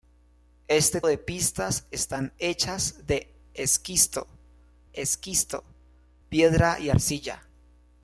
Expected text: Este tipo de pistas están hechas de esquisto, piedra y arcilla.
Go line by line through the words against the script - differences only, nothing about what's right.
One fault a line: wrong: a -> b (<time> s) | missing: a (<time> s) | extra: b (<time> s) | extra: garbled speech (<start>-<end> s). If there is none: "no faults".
missing: tipo (1.0 s)
extra: esquisto (4.9 s)